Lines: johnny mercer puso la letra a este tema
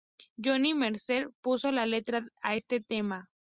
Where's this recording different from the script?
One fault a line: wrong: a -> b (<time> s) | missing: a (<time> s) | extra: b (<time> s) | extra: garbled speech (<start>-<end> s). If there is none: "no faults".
no faults